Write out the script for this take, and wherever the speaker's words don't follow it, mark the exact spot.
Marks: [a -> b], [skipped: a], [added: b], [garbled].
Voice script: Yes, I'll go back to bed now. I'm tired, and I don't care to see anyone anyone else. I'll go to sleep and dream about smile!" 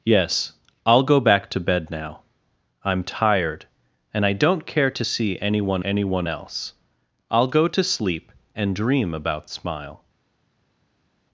Yes, I'll go back to bed now. I'm tired, and I don't care to see anyone anyone else. I'll go to sleep and dream about smile!"